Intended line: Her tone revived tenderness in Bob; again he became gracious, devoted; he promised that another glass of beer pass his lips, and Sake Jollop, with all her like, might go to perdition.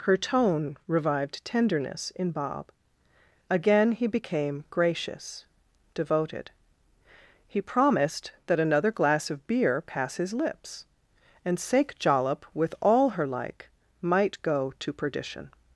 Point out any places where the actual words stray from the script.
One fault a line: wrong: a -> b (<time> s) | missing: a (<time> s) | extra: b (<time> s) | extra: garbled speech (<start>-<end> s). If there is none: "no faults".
no faults